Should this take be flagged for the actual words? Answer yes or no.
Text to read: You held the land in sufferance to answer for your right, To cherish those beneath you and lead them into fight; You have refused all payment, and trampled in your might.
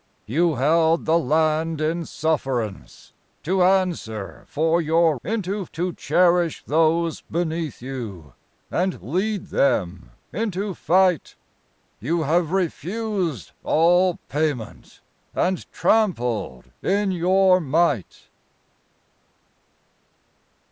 yes